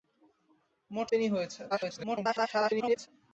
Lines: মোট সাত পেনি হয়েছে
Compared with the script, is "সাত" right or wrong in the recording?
wrong